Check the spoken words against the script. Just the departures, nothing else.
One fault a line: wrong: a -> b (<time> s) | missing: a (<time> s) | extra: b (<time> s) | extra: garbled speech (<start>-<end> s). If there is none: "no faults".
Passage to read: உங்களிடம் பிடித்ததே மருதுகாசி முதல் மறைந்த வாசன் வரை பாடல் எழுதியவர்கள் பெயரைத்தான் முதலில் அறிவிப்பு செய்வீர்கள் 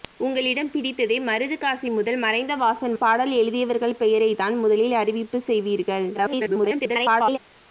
missing: வரை (3.0 s)
extra: garbled speech (6.1-7.4 s)